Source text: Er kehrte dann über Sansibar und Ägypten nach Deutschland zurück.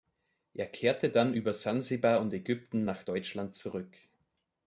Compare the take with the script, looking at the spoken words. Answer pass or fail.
pass